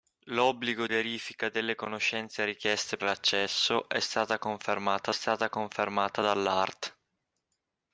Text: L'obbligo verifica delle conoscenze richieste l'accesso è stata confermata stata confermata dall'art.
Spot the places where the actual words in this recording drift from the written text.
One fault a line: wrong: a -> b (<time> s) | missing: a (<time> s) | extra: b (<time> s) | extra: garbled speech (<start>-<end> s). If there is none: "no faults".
no faults